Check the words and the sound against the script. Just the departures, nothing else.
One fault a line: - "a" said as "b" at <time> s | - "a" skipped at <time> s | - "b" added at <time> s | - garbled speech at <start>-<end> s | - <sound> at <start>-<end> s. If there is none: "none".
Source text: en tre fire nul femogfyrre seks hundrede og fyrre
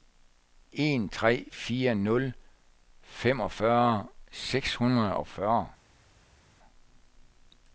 none